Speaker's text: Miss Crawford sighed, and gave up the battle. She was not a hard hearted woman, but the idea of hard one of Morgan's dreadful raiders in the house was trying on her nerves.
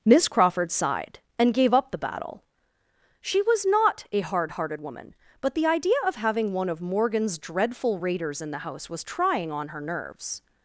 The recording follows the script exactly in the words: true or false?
false